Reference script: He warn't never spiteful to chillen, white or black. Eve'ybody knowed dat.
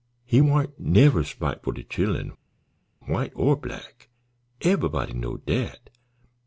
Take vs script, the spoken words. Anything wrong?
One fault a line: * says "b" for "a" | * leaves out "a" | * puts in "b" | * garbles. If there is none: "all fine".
all fine